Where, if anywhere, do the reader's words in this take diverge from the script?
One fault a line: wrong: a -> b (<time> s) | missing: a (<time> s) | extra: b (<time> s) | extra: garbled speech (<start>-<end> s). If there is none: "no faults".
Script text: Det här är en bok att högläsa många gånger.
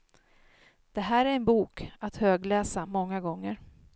no faults